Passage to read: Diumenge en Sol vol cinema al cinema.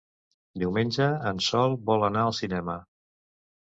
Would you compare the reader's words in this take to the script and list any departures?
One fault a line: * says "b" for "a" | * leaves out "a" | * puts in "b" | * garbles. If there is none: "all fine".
* says "anar" for "cinema"